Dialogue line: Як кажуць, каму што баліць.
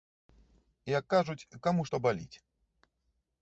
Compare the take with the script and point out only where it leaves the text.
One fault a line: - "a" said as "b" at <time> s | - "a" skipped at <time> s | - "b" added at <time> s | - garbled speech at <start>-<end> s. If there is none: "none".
none